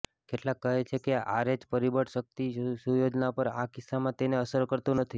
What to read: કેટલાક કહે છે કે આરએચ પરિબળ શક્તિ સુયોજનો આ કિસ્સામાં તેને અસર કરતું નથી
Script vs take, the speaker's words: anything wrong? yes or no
yes